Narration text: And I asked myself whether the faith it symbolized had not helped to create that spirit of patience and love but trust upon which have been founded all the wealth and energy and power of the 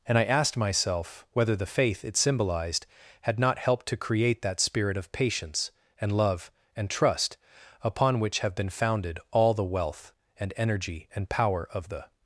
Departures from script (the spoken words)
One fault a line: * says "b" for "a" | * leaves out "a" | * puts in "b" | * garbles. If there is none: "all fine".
* says "and" for "but"